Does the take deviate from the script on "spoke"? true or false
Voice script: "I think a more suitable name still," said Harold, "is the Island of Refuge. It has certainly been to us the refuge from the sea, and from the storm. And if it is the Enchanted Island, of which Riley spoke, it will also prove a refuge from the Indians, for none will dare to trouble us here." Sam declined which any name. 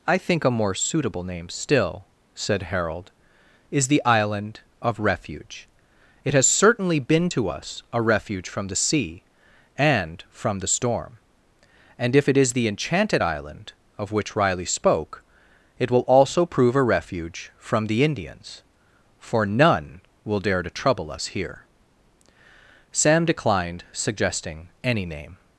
false